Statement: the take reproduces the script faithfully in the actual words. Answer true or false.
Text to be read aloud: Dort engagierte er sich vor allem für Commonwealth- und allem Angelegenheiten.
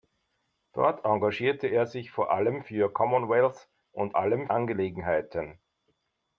true